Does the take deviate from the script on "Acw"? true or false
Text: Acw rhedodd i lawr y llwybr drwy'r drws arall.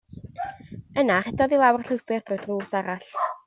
true